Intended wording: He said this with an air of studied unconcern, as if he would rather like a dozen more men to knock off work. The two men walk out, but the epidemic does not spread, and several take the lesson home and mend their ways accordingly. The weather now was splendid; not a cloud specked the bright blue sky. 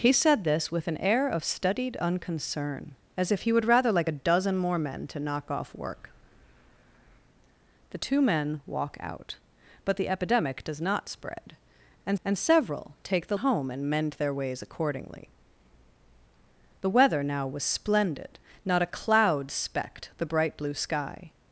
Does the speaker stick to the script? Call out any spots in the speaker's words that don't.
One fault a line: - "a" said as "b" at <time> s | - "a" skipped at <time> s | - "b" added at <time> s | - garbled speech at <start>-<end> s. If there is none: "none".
- "and" added at 12.2 s
- "lesson" skipped at 13.4 s